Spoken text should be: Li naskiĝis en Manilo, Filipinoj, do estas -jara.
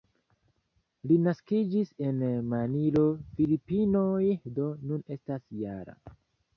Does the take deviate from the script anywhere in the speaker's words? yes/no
yes